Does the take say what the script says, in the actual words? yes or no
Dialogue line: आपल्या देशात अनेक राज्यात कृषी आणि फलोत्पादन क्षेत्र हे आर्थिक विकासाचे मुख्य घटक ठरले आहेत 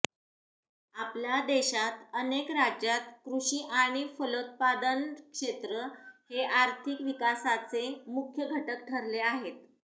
yes